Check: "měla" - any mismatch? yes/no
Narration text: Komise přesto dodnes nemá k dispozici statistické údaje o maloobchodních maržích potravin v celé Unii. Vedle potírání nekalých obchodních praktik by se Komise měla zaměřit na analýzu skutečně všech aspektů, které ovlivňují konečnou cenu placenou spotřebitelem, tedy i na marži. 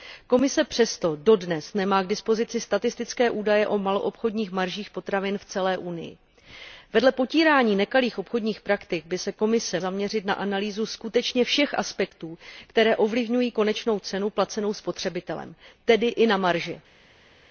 yes